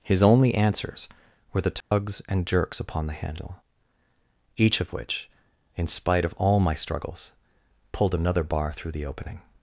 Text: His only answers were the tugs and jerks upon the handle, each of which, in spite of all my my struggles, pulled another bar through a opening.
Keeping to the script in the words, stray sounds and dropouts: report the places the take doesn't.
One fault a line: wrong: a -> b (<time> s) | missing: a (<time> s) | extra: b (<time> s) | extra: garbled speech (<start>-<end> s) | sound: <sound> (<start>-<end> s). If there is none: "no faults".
sound: dropout (1.8-1.9 s)
missing: my (6.7 s)
wrong: a -> the (8.9 s)